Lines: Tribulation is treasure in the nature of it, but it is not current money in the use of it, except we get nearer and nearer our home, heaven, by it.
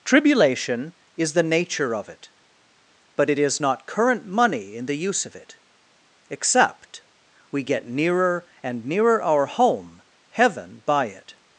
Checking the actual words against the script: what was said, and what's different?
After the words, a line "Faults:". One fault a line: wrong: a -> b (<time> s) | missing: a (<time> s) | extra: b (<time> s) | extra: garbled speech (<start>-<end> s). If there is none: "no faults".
Tribulation is the nature of it, but it is not current money in the use of it, except we get nearer and nearer our home, heaven, by it.
Faults:
missing: treasure in (1.3 s)